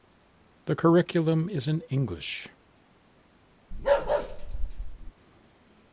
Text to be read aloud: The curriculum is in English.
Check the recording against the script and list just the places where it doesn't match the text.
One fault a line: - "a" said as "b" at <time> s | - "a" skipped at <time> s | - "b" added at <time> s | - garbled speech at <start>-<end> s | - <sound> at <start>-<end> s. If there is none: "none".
- bark at 3.7-5.1 s